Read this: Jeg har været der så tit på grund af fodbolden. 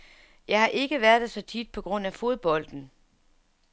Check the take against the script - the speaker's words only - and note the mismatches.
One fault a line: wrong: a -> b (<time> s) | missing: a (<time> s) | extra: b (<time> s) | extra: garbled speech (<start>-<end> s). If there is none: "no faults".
extra: ikke (0.7 s)